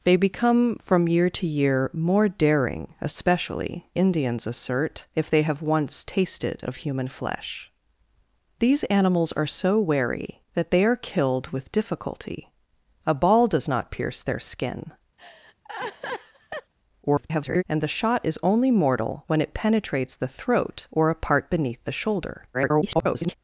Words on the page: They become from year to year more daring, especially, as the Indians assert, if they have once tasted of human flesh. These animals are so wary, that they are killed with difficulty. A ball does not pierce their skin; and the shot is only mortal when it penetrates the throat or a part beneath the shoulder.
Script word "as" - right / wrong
wrong